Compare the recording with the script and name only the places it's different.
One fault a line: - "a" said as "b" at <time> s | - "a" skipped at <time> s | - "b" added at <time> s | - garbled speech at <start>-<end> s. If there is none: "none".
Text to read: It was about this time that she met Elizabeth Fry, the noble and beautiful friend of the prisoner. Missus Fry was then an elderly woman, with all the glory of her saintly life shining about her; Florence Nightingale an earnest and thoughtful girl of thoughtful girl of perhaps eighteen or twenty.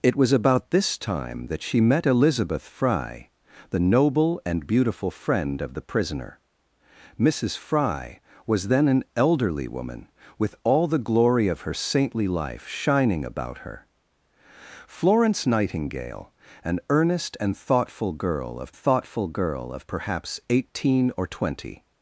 none